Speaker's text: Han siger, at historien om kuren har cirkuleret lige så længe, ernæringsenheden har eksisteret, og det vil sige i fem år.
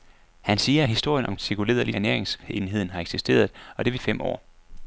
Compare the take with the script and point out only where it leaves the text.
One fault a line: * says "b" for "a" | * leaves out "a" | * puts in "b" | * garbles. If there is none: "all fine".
* leaves out "kuren har"
* leaves out "så længe"
* leaves out "sige"